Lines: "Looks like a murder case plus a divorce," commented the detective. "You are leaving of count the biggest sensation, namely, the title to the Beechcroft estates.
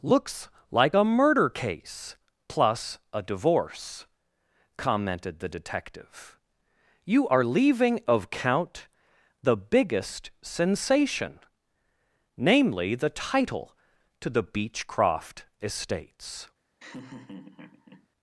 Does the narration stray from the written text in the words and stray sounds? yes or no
yes